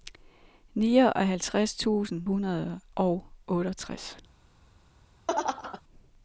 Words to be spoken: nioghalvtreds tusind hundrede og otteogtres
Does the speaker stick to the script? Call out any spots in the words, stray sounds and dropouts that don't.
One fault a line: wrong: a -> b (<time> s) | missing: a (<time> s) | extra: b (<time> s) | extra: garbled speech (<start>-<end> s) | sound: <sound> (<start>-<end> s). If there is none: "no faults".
sound: laugh (5.3-5.8 s)